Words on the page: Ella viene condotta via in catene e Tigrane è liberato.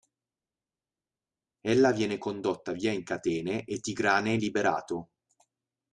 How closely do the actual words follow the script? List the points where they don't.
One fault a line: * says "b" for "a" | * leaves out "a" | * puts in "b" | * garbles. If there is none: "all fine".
all fine